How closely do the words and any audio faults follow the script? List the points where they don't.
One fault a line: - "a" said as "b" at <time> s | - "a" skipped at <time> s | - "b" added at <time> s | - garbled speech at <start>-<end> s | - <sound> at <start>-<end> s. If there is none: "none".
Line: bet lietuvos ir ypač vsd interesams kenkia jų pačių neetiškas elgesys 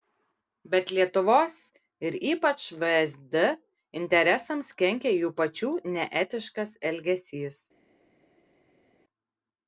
none